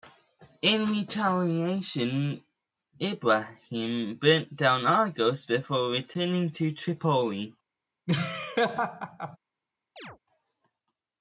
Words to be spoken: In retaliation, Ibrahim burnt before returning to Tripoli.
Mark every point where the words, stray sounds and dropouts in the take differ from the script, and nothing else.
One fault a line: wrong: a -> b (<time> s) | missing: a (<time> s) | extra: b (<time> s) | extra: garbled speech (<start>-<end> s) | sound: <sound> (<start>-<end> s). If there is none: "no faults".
extra: down Argos (4.5 s)
sound: laugh (8.1-9.4 s)
sound: chirp (10.0-10.2 s)